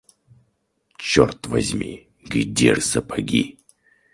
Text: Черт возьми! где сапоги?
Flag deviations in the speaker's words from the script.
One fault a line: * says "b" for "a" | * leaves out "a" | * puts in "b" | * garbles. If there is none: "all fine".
all fine